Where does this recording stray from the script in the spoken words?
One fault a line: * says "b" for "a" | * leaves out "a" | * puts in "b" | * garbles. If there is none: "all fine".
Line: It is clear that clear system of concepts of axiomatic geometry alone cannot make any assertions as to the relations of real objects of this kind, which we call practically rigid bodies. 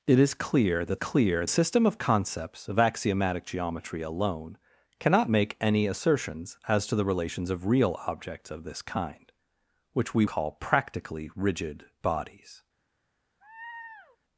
all fine